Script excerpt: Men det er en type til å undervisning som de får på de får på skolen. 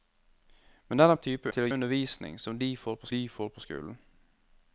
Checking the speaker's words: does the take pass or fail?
pass